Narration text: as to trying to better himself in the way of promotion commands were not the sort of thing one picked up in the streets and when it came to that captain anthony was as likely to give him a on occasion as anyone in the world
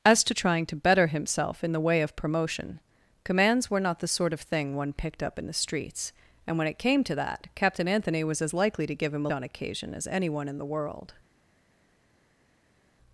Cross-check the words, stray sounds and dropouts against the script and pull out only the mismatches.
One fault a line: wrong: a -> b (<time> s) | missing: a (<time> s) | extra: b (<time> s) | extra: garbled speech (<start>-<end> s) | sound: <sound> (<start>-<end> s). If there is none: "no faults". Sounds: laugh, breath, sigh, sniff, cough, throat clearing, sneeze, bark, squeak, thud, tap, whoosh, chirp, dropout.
no faults